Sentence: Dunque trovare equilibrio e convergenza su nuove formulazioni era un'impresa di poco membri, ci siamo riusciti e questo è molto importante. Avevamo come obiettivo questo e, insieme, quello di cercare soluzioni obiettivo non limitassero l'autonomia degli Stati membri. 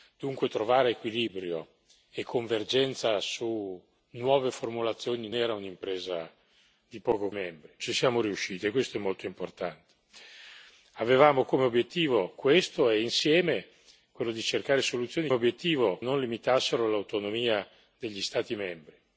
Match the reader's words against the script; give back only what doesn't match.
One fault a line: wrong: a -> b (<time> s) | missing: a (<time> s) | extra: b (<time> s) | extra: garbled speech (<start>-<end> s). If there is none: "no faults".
no faults